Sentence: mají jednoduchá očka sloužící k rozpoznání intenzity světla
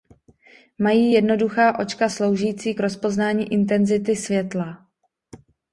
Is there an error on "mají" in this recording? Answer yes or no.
no